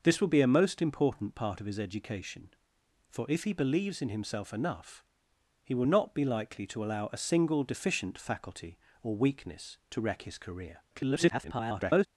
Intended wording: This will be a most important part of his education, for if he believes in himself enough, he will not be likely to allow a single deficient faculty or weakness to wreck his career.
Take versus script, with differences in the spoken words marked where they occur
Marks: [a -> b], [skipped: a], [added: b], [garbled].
This will be a most important part of his education, for if he believes in himself enough, he will not be likely to allow a single deficient faculty or weakness to wreck his career. [garbled]